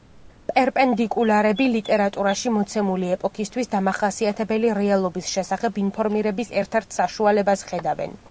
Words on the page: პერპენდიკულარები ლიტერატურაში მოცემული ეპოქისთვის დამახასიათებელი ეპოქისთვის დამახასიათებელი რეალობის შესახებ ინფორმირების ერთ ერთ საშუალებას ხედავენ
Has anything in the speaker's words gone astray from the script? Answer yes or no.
yes